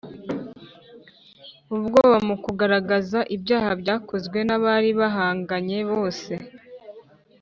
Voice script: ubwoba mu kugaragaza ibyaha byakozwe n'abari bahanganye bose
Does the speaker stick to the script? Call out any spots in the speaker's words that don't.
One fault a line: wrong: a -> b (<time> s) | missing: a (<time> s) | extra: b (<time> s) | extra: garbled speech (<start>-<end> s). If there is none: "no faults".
no faults